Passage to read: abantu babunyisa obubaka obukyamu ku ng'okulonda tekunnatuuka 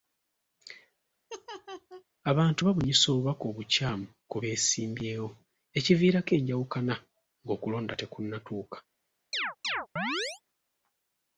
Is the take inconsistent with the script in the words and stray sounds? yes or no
yes